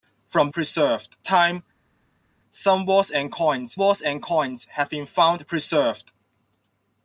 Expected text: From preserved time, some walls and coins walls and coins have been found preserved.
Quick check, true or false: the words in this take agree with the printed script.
true